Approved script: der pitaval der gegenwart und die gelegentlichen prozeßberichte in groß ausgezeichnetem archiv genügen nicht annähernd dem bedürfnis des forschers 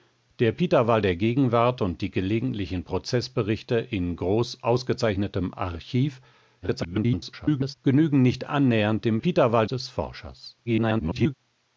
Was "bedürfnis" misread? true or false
true